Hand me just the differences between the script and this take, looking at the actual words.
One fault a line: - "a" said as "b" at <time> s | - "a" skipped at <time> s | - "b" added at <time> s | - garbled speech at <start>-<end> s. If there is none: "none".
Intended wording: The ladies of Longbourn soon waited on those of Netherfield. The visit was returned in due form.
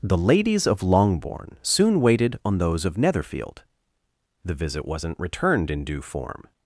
- "was" said as "wasn't" at 4.8 s